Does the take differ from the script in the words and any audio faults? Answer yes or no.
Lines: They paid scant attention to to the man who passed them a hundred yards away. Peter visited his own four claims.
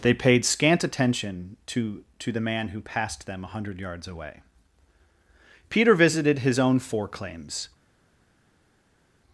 no